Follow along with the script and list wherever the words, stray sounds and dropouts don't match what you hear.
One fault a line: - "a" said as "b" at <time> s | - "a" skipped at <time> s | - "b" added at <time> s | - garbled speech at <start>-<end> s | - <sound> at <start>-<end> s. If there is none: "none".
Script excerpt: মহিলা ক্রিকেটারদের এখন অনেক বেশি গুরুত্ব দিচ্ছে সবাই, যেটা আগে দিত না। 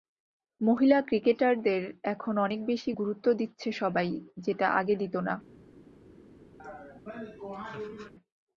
- laugh at 6.6-8.1 s